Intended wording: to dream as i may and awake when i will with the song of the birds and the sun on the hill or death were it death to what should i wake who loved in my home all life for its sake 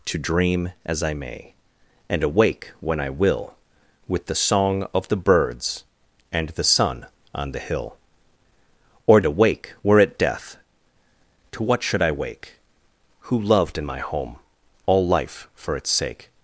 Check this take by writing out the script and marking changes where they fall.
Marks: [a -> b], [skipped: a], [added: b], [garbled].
to dream as i may and awake when i will with the song of the birds and the sun on the hill or [death -> awake] were it death to what should i wake who loved in my home all life for its sake